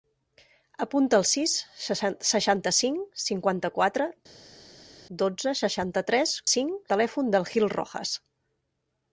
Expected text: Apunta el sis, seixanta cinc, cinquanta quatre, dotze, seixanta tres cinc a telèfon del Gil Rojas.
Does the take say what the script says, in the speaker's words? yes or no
yes